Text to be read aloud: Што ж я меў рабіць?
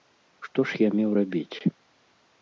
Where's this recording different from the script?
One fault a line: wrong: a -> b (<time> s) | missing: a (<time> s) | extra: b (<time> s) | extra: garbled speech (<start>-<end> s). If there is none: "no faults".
no faults